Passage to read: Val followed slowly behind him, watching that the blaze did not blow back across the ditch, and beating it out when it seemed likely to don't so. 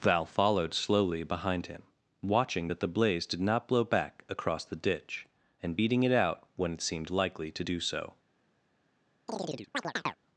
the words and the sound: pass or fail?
fail